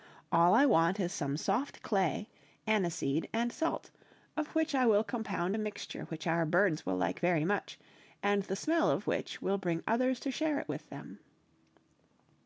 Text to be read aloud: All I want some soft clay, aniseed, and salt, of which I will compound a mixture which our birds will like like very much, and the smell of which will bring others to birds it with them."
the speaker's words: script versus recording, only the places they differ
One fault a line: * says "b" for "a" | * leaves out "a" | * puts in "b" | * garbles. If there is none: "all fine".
* puts in "is"
* leaves out "like"
* says "share" for "birds"